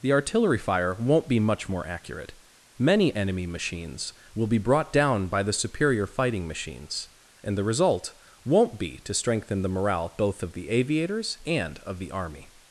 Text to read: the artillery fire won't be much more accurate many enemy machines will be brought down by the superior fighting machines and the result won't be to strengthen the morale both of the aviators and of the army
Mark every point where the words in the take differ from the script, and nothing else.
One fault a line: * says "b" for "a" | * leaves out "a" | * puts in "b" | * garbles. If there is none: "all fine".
all fine